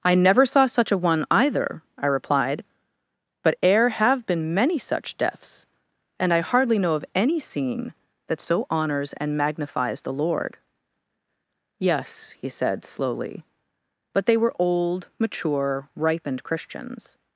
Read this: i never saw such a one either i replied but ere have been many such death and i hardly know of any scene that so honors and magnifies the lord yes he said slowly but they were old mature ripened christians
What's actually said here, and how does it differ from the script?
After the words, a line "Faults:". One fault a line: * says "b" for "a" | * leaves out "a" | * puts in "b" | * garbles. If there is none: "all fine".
i never saw such a one either i replied but ere have been many such deaths and i hardly know of any scene that so honors and magnifies the lord yes he said slowly but they were old mature ripened christians
Faults:
* says "deaths" for "death"